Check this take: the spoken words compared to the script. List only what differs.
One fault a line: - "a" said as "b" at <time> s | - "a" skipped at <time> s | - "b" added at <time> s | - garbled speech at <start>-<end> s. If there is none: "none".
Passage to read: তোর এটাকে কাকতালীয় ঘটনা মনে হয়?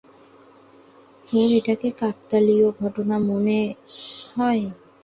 none